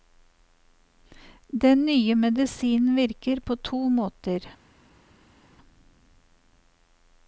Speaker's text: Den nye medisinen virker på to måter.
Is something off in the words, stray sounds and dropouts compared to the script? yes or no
no